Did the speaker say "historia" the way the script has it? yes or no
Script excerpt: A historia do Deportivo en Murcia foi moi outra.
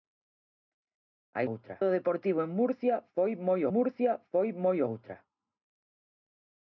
no